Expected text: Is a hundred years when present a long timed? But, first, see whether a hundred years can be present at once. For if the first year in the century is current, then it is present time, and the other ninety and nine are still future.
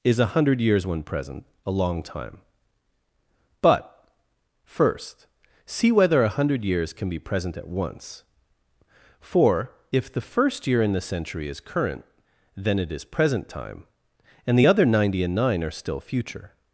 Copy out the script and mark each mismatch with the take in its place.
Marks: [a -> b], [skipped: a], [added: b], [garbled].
Is a hundred years when present a long [timed? -> time] But, first, see whether a hundred years can be present at once. For if the first year in the century is current, then it is present time, and the other ninety and nine are still future.